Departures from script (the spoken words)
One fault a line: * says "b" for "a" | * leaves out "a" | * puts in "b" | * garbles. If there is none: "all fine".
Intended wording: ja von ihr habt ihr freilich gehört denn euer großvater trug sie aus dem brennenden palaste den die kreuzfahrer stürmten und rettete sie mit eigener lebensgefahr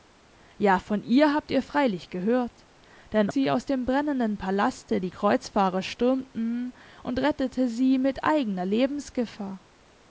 * leaves out "euer großvater trug"
* leaves out "den"